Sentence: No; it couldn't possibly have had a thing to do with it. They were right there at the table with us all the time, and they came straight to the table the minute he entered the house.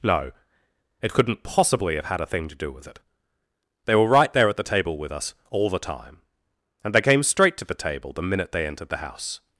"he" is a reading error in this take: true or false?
true